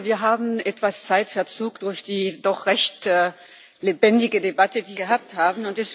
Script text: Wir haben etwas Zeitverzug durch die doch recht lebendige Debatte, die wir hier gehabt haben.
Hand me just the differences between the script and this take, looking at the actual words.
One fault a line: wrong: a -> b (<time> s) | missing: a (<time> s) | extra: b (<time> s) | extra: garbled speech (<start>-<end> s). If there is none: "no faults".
missing: wir hier (5.0 s)